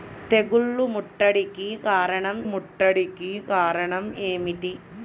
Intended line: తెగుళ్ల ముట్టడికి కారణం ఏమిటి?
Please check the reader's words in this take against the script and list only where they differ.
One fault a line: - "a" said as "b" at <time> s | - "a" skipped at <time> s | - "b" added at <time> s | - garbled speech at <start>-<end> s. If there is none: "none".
- "ముట్టడికి కారణం" added at 2.5 s